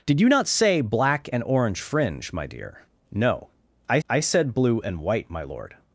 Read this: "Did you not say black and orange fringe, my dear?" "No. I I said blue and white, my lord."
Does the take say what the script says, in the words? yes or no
yes